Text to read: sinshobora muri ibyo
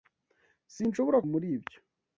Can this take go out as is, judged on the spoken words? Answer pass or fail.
pass